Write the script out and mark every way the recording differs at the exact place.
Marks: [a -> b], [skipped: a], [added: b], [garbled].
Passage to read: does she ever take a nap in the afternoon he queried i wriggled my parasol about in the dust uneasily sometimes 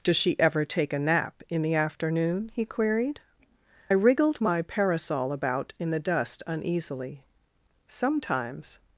does she ever take a nap in the afternoon he queried [skipped: i] wriggled my parasol about in the dust uneasily sometimes